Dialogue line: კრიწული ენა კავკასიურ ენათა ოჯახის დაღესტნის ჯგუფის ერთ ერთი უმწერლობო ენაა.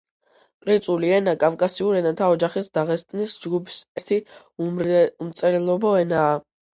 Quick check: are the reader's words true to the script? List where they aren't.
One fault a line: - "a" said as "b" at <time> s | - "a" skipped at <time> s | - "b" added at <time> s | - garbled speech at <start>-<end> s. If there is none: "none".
- "ერთ" skipped at 3.8 s